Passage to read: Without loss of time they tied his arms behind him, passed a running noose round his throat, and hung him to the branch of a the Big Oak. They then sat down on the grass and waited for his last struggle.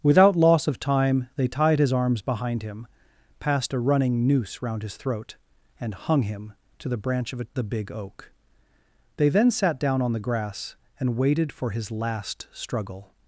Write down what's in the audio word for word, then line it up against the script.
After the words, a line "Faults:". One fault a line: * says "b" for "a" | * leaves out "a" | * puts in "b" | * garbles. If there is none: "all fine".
Without loss of time they tied his arms behind him, passed a running noose round his throat, and hung him to the branch of a the Big Oak. They then sat down on the grass and waited for his last struggle.
Faults:
all fine